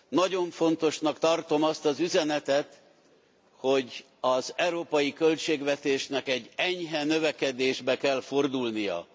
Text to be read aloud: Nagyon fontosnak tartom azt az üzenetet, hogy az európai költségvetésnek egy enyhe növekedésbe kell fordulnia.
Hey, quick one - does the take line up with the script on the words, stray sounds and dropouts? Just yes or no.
yes